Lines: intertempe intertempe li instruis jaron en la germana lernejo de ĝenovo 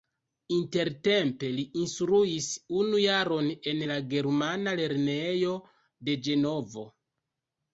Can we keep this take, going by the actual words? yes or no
no